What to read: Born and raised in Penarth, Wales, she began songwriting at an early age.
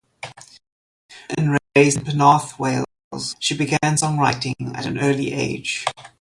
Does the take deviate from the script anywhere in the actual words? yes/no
no